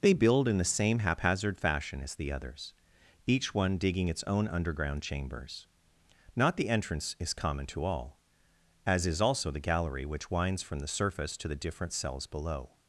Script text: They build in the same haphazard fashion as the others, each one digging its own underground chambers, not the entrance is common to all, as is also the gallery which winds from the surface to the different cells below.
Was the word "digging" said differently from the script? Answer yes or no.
no